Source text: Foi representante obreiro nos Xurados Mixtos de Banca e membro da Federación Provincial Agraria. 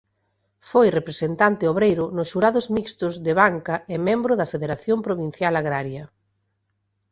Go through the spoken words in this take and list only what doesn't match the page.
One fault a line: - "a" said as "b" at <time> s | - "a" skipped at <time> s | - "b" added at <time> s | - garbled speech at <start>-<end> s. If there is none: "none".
none